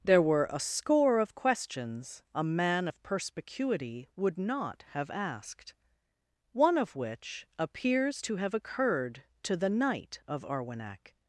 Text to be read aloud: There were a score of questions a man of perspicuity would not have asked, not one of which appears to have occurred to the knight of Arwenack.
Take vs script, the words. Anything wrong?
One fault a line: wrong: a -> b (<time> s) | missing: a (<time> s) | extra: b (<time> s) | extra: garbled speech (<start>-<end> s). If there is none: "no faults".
missing: not (5.7 s)